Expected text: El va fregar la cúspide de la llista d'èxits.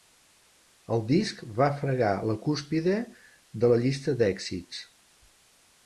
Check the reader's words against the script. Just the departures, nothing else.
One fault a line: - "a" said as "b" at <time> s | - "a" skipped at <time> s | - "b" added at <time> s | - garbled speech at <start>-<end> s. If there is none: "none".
- "disc" added at 1.1 s